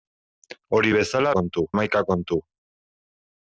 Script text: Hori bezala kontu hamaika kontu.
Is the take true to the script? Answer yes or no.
yes